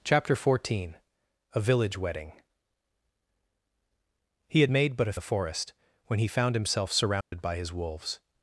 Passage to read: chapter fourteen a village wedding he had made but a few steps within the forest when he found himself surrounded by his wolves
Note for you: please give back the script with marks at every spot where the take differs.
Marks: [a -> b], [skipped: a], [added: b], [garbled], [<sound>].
chapter fourteen a village wedding he had made but a [skipped: few steps within] the forest when he found himself surrounded [dropout] by his wolves